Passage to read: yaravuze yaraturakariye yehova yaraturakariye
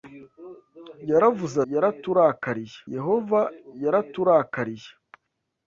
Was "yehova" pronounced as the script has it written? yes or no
yes